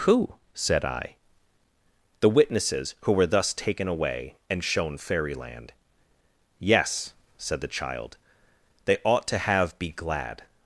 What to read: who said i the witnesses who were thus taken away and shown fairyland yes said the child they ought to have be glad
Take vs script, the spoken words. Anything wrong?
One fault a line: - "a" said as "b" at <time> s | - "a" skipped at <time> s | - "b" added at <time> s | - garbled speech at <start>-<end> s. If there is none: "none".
none